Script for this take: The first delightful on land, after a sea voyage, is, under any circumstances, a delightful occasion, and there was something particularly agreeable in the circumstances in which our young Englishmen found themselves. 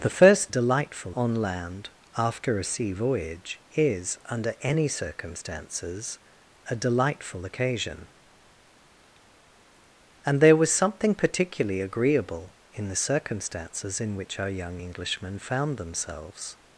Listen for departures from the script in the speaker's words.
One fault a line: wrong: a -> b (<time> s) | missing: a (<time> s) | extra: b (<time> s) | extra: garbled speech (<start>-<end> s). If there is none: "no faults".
no faults